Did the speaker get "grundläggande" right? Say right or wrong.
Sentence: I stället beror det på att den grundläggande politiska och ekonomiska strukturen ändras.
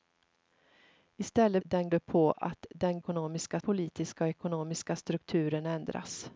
wrong